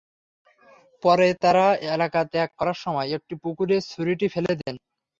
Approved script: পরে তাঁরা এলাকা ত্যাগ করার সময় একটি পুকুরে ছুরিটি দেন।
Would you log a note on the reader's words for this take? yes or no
yes